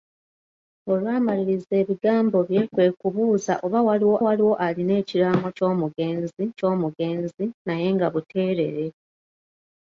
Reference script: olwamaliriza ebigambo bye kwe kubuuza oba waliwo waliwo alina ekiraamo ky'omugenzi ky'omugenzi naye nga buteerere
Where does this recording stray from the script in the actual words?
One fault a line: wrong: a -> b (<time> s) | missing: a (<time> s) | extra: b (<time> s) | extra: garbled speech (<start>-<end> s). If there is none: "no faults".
no faults